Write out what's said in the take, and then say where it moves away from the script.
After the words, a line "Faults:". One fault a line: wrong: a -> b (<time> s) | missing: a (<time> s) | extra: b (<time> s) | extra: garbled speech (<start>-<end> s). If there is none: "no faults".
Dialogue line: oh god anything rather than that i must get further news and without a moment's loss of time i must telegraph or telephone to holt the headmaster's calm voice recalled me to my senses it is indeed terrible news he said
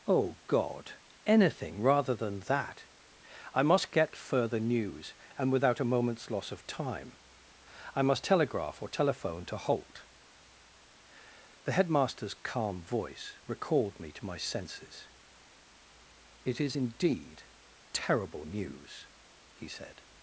oh god anything rather than that i must get further news and without a moment's loss of time i must telegraph or telephone to holt the headmaster's calm voice recalled me to my senses it is indeed terrible news he said
Faults:
no faults